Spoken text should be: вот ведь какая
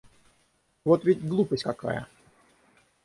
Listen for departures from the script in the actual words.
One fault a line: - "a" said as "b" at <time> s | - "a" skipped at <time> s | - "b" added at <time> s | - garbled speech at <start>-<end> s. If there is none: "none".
- "глупость" added at 1.2 s